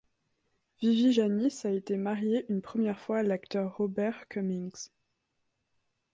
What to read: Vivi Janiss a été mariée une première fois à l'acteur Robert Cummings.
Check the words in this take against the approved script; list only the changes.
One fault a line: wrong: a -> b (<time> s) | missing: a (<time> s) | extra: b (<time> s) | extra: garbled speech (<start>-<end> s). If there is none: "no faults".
no faults